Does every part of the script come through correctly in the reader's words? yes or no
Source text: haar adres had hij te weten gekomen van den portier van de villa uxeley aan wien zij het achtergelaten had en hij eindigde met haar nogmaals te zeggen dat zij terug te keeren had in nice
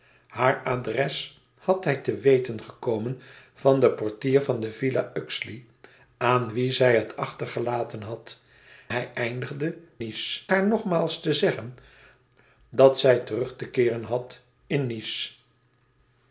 no